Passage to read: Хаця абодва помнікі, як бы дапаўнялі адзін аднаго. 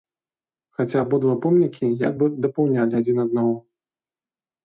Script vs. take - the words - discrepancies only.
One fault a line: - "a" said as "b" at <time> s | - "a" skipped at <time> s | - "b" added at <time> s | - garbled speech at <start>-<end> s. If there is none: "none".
none